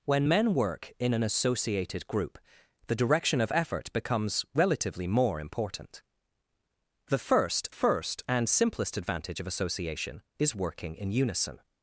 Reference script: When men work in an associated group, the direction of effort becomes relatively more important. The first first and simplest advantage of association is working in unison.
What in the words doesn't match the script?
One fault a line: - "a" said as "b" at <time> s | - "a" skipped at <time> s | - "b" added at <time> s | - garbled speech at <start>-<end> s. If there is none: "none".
none